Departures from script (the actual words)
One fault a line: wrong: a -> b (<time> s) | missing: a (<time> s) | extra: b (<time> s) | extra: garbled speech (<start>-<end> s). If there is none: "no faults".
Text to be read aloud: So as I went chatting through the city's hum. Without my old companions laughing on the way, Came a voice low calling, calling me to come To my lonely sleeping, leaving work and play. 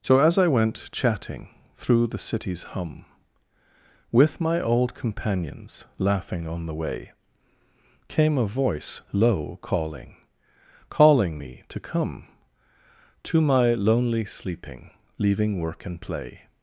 wrong: Without -> With (4.1 s)